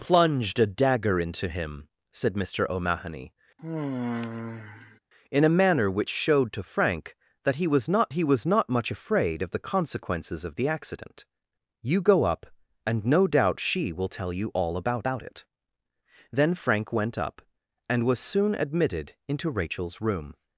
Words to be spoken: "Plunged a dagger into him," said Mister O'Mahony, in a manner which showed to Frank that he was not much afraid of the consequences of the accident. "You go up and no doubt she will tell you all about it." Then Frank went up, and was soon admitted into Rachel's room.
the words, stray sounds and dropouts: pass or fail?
fail